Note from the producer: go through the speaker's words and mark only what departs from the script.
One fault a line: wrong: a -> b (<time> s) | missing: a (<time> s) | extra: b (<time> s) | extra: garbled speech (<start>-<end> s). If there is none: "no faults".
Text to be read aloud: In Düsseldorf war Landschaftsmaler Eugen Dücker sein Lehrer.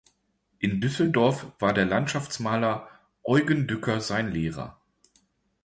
extra: der (1.7 s)